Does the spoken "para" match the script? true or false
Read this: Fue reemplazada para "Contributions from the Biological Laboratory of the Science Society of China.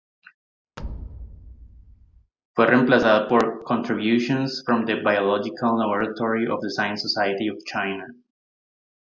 false